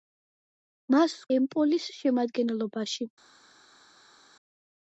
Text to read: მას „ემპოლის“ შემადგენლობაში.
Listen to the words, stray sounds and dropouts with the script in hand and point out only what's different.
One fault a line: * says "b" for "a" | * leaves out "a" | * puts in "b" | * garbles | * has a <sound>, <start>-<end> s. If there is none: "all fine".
all fine